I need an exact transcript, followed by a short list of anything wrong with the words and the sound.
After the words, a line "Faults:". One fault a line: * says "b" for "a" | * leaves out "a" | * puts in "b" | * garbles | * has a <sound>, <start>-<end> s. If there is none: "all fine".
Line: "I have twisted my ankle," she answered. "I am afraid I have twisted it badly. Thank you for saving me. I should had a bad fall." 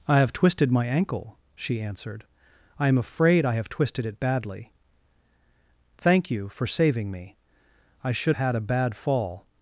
"I have twisted my ankle," she answered. "I am afraid I have twisted it badly. Thank you for saving me. I should had a bad fall."
Faults:
all fine